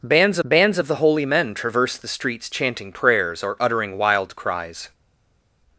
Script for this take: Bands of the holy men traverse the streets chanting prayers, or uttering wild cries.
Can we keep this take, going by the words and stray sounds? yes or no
no